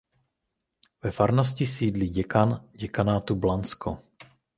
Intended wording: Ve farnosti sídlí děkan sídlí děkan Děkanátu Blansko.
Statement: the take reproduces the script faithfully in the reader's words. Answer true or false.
false